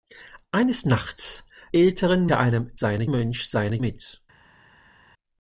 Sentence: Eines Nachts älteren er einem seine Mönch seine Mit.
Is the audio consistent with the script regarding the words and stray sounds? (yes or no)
yes